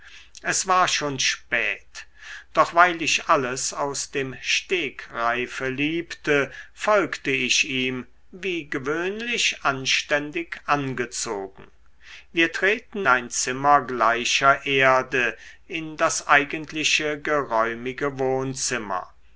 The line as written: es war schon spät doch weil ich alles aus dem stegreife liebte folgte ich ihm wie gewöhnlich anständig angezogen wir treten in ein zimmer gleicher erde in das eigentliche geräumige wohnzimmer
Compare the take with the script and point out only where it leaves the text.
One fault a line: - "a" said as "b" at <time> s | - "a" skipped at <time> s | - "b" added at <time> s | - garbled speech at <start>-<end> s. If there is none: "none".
- "in" skipped at 13.1 s